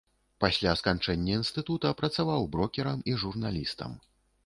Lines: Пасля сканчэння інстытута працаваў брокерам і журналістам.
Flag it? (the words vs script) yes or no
no